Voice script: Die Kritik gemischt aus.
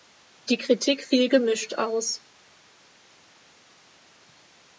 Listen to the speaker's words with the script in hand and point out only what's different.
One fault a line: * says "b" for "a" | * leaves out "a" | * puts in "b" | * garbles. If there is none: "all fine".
* puts in "fiel"